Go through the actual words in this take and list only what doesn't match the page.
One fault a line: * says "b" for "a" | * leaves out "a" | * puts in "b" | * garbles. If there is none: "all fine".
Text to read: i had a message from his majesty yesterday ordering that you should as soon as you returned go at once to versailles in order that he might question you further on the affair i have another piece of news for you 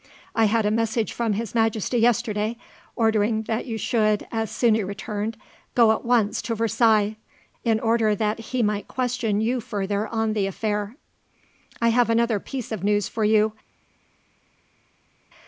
* leaves out "as"